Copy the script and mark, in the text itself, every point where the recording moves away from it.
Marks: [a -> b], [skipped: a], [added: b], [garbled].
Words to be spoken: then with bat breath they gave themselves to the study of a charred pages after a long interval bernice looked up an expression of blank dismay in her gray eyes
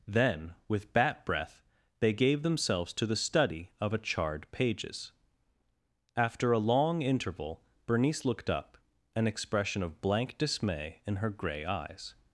then with bat breath they gave themselves to the study of a charred pages after a long interval bernice looked up an expression of blank dismay in her gray eyes